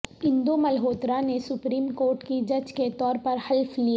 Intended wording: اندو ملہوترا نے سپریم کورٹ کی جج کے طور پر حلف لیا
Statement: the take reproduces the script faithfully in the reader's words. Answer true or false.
true